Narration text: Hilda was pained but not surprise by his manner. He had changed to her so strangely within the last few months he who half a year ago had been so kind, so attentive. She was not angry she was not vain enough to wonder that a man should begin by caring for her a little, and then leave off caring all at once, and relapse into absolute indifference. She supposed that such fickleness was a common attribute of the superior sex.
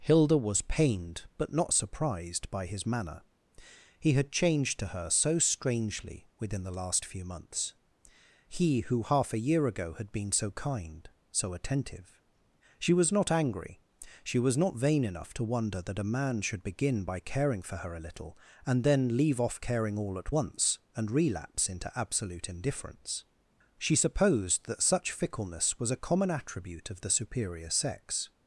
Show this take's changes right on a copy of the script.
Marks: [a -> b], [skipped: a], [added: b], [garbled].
Hilda was pained but not [surprise -> surprised] by his manner. He had changed to her so strangely within the last few months he who half a year ago had been so kind, so attentive. She was not angry she was not vain enough to wonder that a man should begin by caring for her a little, and then leave off caring all at once, and relapse into absolute indifference. She supposed that such fickleness was a common attribute of the superior sex.